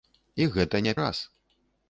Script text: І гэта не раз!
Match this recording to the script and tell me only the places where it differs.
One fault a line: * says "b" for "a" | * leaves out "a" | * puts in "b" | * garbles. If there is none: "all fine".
all fine